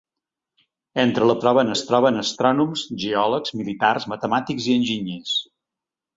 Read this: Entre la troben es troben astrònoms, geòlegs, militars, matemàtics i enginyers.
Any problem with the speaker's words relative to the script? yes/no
no